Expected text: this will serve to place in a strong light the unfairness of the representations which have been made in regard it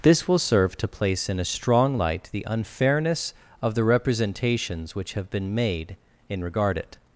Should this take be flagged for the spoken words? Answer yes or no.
no